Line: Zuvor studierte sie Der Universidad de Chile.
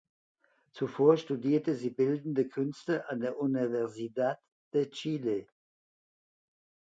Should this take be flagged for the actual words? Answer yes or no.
yes